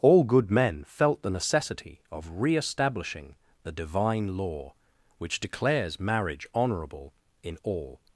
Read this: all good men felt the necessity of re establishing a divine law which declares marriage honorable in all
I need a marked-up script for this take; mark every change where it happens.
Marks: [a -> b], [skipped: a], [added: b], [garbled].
all good men felt the necessity of re establishing [a -> the] divine law which declares marriage honorable in all